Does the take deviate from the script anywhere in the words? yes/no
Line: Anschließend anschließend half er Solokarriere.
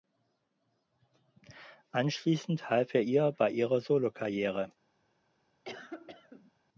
yes